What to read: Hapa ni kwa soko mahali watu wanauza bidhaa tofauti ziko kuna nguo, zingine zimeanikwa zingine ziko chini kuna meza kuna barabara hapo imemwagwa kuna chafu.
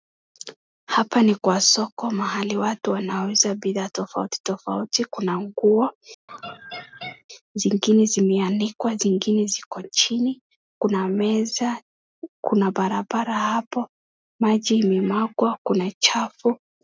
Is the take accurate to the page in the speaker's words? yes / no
no